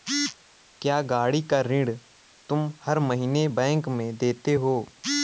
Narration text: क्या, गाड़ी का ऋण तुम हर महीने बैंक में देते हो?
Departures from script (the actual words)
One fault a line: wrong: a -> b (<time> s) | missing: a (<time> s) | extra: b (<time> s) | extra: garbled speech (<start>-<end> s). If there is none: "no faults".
no faults